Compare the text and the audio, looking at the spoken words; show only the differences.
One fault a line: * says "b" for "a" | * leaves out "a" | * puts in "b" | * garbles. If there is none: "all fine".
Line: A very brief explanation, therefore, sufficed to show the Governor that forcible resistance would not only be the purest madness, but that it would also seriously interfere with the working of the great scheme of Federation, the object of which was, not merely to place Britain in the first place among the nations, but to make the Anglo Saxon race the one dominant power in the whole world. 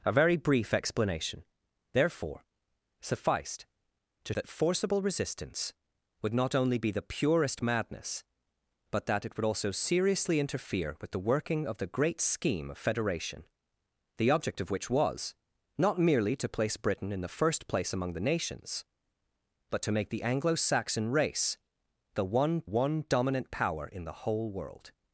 * leaves out "show the Governor"
* puts in "one"